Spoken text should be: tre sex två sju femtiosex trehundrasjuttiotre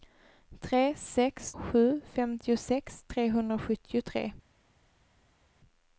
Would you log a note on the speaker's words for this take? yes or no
yes